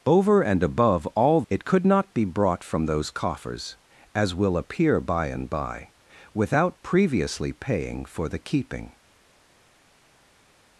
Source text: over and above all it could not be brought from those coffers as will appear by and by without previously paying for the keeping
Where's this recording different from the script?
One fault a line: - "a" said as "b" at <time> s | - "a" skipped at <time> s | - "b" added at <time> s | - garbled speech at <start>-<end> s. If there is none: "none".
none